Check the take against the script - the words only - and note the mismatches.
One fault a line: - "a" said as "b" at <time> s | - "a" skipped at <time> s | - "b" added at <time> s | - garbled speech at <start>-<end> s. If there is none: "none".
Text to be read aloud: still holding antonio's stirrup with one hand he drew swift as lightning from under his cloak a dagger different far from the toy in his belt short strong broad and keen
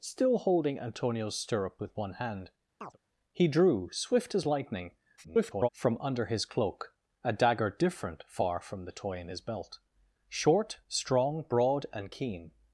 - garbled speech at 5.2-5.7 s